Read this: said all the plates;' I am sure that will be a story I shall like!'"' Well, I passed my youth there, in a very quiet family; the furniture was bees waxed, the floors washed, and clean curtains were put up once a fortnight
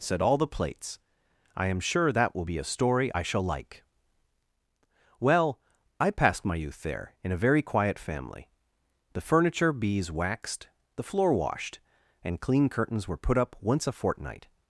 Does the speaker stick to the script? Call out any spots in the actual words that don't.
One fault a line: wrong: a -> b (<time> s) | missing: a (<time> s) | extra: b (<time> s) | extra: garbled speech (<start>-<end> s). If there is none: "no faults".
missing: was (9.7 s)
wrong: floors -> floor (11.0 s)